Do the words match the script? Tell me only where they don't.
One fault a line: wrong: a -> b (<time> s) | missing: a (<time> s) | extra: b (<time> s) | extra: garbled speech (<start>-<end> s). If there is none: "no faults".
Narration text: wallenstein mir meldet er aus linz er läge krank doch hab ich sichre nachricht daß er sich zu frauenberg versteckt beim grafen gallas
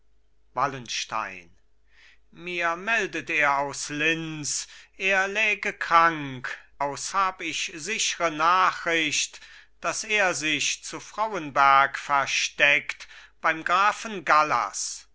wrong: doch -> aus (6.8 s)